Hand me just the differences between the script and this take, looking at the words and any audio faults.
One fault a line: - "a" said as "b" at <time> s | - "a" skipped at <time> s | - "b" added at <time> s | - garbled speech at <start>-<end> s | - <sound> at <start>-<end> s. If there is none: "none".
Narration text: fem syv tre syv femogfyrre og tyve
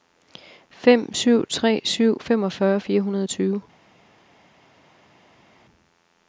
- "fire hundrede" added at 2.8 s